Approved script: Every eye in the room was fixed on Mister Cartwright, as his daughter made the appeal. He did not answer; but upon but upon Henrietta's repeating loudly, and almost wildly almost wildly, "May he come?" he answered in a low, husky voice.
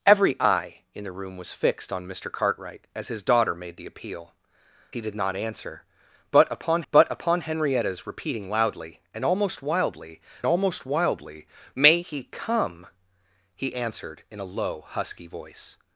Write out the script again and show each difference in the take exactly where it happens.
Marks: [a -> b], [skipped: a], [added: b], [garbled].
Every eye in the room was fixed on Mister Cartwright, as his daughter made the appeal. He did not answer; but upon but upon Henrietta's repeating loudly, and almost wildly almost wildly, "May he come?" he answered in a low, husky voice.